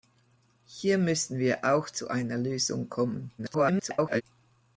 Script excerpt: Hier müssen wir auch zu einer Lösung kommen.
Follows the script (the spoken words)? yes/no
no